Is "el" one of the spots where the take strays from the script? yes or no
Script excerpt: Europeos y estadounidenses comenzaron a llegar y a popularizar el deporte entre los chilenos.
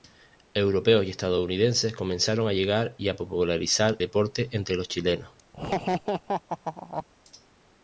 yes